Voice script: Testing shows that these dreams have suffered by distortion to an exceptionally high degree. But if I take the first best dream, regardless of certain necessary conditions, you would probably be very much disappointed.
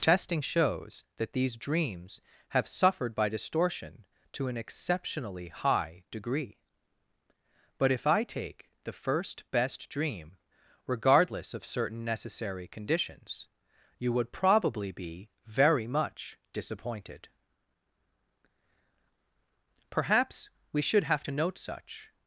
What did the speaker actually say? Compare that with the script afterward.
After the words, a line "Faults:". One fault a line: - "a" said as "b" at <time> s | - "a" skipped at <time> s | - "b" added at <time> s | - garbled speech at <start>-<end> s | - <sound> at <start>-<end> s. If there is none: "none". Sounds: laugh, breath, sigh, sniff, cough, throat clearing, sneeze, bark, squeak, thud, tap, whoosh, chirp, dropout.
Testing shows that these dreams have suffered by distortion to an exceptionally high degree. But if I take the first best dream, regardless of certain necessary conditions, you would probably be very much disappointed. Perhaps we should have to note such
Faults:
- "Perhaps we should have to note such" added at 19.9 s